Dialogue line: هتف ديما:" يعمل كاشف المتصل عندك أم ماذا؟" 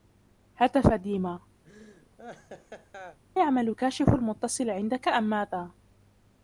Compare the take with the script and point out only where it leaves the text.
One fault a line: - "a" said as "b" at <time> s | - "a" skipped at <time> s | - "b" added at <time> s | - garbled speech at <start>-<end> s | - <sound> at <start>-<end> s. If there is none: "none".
- laugh at 1.6-3.2 s